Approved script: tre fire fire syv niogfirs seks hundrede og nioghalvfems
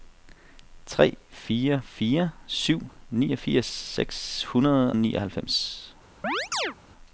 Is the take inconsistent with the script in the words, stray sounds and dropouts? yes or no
yes